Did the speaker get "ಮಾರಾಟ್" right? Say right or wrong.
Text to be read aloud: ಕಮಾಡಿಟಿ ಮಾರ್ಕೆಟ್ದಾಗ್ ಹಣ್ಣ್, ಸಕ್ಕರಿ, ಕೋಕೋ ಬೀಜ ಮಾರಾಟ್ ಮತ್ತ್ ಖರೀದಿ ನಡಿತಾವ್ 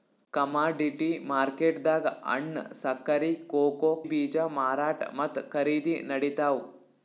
right